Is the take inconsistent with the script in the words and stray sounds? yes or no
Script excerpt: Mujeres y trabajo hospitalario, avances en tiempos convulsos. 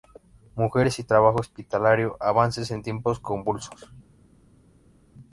no